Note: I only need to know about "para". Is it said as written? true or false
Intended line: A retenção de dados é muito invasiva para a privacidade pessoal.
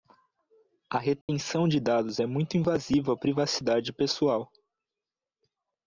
false